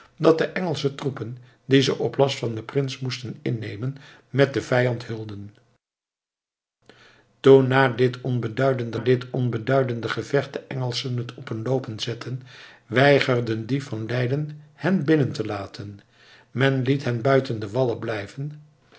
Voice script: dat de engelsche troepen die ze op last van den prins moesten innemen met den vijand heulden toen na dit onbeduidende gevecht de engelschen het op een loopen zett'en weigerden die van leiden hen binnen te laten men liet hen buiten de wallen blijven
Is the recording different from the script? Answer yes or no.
yes